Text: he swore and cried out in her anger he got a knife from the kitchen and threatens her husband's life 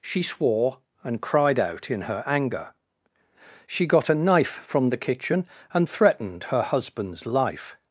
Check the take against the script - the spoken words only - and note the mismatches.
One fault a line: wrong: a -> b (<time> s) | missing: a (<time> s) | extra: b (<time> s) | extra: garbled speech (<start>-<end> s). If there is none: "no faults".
wrong: he -> she (0.0 s)
wrong: he -> she (3.7 s)
wrong: threatens -> threatened (5.9 s)